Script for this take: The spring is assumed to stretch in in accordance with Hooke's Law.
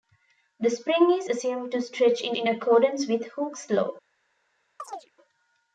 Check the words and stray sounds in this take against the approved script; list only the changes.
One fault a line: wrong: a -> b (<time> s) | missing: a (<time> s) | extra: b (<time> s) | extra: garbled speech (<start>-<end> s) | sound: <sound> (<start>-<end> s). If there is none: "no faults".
sound: chirp (4.8-5.1 s)